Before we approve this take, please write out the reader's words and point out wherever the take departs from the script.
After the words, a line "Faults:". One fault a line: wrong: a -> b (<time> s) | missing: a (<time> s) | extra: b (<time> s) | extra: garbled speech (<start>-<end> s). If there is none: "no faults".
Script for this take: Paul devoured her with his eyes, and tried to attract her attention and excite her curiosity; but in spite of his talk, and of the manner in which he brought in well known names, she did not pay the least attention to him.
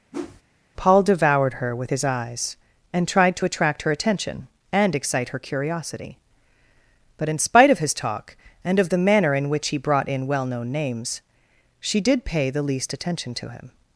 Paul devoured her with his eyes, and tried to attract her attention and excite her curiosity; but in spite of his talk, and of the manner in which he brought in well known names, she did pay the least attention to him.
Faults:
missing: not (12.2 s)